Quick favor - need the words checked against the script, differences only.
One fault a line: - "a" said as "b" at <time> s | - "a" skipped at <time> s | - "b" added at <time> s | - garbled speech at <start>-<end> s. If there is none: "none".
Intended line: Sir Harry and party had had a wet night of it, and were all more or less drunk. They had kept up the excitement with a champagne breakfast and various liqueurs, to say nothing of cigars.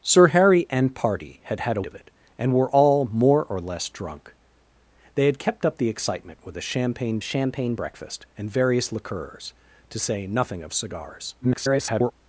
- "wet night" skipped at 1.8 s
- "champagne" added at 7.2 s
- garbled speech at 11.4-12.1 s